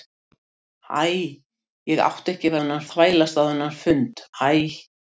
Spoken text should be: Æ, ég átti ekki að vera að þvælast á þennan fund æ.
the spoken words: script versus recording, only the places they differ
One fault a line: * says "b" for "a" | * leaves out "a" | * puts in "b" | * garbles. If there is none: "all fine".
* says "þennan" for "vera"